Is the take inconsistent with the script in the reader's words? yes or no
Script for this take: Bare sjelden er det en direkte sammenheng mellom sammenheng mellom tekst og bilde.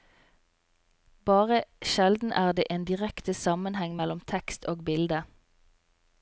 yes